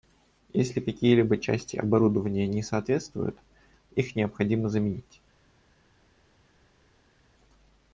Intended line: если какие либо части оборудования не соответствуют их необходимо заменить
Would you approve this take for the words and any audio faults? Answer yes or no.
yes